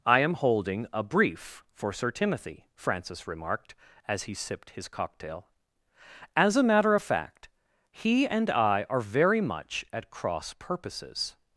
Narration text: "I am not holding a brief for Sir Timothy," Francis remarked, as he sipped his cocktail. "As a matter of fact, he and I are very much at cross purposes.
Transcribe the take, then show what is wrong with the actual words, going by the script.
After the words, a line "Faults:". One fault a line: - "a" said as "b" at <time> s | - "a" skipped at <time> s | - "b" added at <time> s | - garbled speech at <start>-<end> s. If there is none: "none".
"I am holding a brief for Sir Timothy," Francis remarked, as he sipped his cocktail. "As a matter of fact, he and I are very much at cross purposes.
Faults:
- "not" skipped at 0.3 s